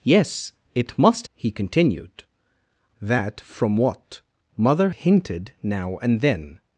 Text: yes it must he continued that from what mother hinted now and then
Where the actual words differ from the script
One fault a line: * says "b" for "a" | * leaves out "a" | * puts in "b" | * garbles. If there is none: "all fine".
all fine